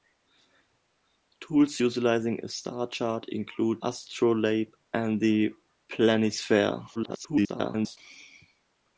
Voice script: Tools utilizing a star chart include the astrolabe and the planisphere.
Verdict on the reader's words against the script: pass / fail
fail